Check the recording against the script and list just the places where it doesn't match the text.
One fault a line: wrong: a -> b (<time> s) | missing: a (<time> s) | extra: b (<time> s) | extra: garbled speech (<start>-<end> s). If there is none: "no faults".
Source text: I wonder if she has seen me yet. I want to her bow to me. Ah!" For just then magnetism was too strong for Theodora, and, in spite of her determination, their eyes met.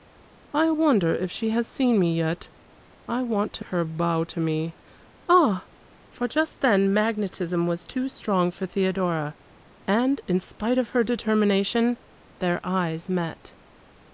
no faults